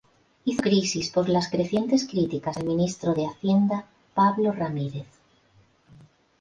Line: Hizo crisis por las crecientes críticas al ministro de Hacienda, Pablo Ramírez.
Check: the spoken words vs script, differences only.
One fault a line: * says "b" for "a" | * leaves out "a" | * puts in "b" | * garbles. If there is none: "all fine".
all fine